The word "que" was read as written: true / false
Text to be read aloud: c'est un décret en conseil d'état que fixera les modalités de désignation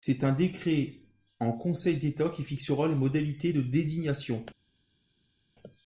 false